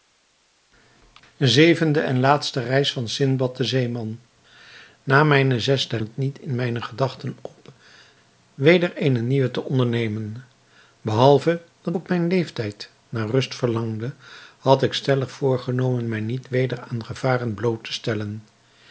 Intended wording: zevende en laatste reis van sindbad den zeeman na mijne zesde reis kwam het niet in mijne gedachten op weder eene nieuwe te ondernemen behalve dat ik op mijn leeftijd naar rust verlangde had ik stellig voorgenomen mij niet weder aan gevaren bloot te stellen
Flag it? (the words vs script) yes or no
yes